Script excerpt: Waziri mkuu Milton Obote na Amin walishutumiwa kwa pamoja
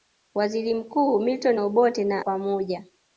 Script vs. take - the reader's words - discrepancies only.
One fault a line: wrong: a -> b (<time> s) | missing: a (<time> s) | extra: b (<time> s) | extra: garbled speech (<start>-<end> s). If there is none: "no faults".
missing: Amin walishutumiwa kwa (2.2 s)